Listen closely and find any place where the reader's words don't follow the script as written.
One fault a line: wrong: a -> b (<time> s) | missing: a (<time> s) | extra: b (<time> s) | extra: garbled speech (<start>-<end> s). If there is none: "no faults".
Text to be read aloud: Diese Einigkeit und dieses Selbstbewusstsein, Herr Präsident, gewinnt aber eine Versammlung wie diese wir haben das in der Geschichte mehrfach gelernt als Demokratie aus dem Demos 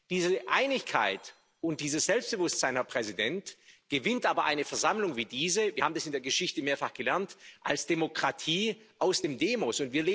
no faults